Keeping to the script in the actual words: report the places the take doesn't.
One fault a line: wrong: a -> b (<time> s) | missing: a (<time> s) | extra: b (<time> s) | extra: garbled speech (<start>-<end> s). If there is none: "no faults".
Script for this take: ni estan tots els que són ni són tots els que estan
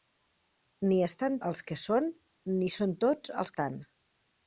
missing: tots (1.4 s)
missing: que (3.6 s)